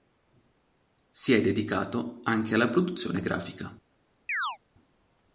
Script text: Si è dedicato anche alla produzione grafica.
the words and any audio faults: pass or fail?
fail